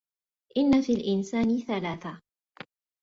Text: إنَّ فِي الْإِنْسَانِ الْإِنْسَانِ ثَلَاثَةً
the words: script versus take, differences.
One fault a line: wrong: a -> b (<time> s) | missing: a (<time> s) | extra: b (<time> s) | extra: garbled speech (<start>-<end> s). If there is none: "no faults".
missing: الْإِنْسَانِ (1.6 s)